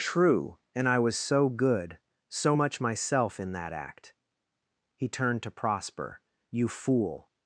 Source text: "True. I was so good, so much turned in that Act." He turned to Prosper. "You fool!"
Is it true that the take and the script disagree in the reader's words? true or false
true